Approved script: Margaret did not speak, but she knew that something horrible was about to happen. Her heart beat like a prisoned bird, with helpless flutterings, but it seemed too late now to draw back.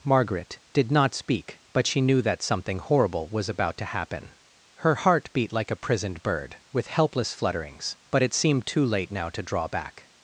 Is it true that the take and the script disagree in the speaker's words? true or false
false